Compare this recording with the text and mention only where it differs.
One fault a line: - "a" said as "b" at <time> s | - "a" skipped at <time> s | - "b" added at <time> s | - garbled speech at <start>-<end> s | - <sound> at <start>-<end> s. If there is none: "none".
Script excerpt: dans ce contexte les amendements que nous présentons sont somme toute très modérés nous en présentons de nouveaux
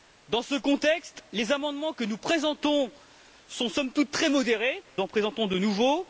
- "nous" skipped at 4.8 s